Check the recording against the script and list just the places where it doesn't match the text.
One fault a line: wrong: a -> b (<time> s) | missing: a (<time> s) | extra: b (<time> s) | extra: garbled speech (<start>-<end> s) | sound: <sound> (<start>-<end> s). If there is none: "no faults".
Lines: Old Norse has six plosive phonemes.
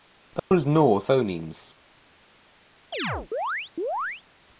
sound: dropout (0.4-0.5 s)
missing: has six plosive (1.1 s)
sound: chirp (2.9-4.2 s)